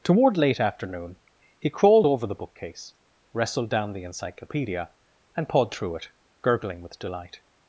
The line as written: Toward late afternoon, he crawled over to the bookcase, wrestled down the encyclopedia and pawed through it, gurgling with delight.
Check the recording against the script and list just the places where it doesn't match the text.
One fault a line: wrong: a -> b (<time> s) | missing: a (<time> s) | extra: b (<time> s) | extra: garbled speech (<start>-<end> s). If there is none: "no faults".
missing: to (2.2 s)